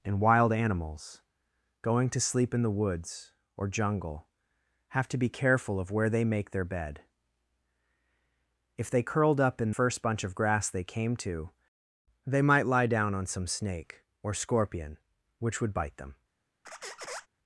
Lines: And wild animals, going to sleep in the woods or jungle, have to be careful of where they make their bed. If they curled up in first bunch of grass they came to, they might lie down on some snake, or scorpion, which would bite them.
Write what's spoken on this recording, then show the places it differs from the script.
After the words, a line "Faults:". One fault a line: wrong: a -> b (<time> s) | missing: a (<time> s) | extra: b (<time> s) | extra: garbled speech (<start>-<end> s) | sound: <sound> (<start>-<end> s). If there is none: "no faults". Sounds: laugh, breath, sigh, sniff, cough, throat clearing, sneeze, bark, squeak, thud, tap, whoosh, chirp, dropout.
And wild animals, going to sleep in the woods or jungle, have to be careful of where they make their bed. If they curled up in first bunch of grass they came to, they might lie down on some snake, or scorpion, which would bite them.
Faults:
sound: squeak (16.6-17.3 s)